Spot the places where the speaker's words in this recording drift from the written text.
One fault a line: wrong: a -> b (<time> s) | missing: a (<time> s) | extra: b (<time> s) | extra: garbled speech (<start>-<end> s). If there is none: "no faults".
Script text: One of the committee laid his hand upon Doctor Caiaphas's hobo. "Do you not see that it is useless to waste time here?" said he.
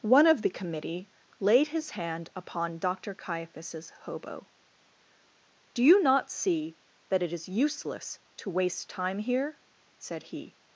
no faults